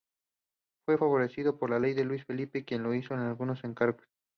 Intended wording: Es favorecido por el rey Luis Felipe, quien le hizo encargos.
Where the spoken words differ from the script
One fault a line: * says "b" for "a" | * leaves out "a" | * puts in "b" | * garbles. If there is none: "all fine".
* says "Fue" for "Es"
* puts in "algunos"